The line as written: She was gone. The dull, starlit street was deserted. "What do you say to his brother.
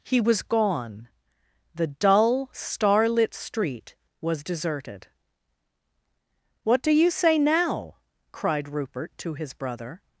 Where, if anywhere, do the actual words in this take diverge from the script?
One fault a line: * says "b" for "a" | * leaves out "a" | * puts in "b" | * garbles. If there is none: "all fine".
* says "He" for "She"
* puts in "now cried Rupert"